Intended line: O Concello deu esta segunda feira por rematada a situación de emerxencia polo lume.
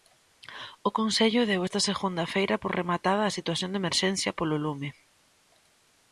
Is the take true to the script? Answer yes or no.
yes